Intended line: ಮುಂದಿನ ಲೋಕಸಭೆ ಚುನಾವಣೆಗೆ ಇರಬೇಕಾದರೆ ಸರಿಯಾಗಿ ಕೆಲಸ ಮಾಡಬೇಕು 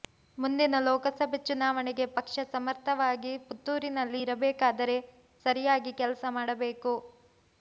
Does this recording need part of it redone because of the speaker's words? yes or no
yes